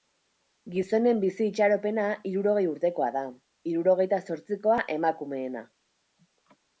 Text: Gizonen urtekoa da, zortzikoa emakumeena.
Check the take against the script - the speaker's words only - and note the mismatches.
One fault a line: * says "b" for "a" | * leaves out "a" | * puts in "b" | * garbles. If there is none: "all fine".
* puts in "bizi itxaropena hirurogei"
* puts in "hirurogeita"